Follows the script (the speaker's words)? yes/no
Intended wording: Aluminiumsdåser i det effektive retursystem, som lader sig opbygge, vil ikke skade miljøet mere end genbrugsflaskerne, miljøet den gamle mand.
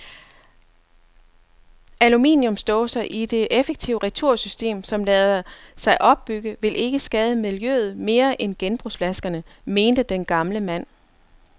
no